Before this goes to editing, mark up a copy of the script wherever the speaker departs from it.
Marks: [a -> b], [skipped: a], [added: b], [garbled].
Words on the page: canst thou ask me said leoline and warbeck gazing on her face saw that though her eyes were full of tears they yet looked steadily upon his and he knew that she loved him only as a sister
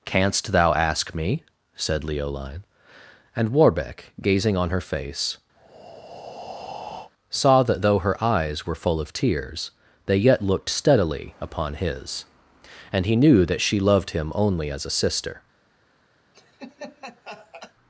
canst thou ask me said leoline and warbeck gazing on her face saw that though her eyes were full of tears they yet looked steadily upon his and he knew that she loved him only as a sister